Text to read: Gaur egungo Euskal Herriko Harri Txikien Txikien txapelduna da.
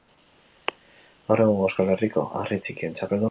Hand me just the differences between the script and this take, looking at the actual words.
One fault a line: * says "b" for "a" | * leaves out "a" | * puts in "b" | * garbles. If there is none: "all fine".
* leaves out "Txikien"